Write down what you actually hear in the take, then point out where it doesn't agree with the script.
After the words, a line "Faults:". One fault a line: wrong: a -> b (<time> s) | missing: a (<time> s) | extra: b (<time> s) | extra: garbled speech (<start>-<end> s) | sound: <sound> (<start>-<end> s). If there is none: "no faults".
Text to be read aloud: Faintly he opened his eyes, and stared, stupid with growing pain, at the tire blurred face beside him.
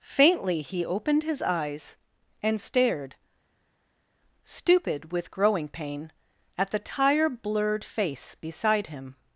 Faintly he opened his eyes, and stared, stupid with growing pain, at the tire blurred face beside him.
Faults:
no faults